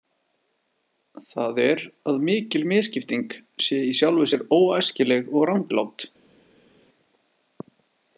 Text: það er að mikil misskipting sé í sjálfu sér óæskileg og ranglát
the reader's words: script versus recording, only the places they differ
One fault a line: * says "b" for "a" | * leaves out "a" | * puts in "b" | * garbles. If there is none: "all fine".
all fine